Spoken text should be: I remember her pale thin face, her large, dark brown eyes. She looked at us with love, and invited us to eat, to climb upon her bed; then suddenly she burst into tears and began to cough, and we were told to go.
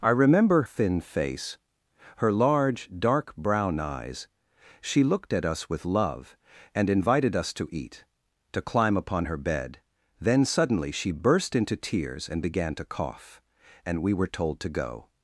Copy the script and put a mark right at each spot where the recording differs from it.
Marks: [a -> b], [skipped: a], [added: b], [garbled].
I remember [skipped: her pale] thin face, her large, dark brown eyes. She looked at us with love, and invited us to eat, to climb upon her bed; then suddenly she burst into tears and began to cough, and we were told to go.